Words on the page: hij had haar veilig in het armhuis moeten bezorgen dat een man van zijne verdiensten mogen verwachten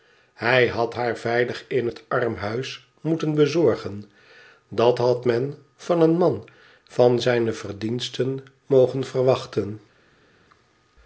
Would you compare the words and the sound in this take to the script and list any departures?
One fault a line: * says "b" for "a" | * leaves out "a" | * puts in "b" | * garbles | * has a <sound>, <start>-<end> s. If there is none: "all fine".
* puts in "had men van"